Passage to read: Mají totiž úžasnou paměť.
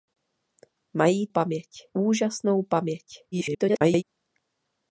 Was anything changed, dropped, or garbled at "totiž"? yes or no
yes